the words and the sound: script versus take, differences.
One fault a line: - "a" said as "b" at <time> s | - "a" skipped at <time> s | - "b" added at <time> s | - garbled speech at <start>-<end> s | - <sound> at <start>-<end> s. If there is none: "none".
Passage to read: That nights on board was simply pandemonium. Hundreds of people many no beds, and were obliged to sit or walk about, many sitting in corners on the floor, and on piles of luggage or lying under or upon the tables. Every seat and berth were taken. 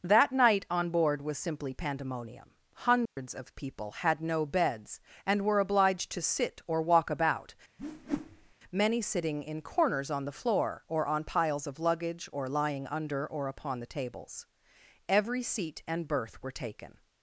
- "nights" said as "night" at 0.3 s
- dropout at 3.1-3.2 s
- "many" said as "had" at 3.9 s
- whoosh at 7.8-8.5 s
- "and" said as "or" at 10.9 s